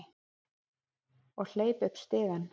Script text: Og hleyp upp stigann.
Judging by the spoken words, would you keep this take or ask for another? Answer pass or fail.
pass